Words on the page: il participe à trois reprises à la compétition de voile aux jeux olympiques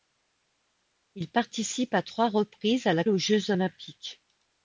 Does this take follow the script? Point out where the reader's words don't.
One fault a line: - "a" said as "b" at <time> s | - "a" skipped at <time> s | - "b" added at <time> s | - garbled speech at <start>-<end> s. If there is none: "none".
- "compétition de voile" skipped at 3.0 s